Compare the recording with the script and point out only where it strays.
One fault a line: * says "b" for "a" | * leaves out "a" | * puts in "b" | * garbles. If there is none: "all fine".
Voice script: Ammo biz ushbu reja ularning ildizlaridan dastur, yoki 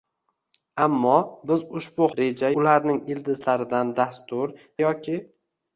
all fine